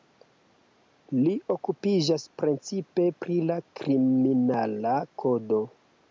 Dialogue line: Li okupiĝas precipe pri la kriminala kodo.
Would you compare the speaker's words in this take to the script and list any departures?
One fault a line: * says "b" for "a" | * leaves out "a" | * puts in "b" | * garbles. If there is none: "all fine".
all fine